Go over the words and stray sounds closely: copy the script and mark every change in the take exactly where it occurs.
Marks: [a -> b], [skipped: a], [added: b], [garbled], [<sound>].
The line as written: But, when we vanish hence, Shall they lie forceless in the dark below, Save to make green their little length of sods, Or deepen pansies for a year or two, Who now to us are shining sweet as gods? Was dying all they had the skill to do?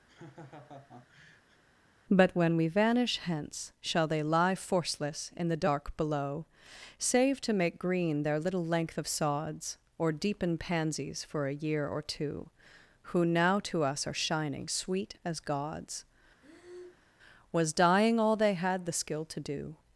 [laugh] But, when we vanish hence, Shall they lie forceless in the dark below, Save to make green their little length of sods, Or deepen pansies for a year or two, Who now to us are shining sweet as gods? [breath] Was dying all they had the skill to do?